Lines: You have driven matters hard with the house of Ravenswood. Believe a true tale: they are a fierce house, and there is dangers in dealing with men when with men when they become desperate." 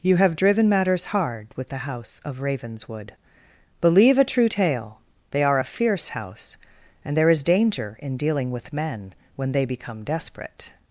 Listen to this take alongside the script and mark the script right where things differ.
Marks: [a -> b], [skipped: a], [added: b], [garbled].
You have driven matters hard with the house of Ravenswood. Believe a true tale: they are a fierce house, and there is [dangers -> danger] in dealing with men when [skipped: with men when] they become desperate."